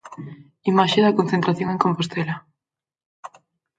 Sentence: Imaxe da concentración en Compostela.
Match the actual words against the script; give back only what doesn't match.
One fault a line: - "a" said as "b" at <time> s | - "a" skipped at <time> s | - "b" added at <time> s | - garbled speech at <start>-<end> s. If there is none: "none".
none